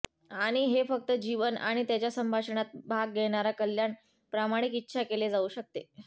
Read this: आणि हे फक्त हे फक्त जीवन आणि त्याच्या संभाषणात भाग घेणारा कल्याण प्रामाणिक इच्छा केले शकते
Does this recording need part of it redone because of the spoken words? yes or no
yes